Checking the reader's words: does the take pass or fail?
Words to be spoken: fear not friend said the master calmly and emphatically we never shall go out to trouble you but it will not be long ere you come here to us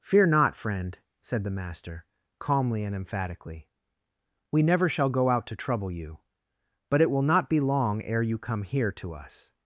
pass